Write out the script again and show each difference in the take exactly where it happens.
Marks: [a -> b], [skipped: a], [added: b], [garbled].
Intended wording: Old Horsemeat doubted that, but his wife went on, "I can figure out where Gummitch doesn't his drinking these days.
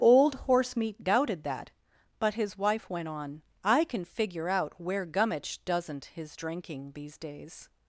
Old Horsemeat doubted that, but his wife went on, "I can figure out where Gummitch doesn't his drinking these days.